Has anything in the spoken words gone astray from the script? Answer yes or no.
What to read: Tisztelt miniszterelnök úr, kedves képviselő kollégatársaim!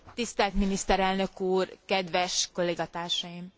yes